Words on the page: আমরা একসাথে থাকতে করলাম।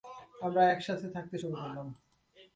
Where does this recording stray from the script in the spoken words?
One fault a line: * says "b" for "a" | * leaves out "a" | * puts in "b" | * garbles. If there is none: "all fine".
* puts in "শুরু"